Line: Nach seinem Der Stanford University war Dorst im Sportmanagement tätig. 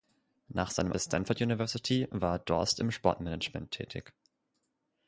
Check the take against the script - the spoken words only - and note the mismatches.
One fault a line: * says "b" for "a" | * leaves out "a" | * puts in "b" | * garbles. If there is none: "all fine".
all fine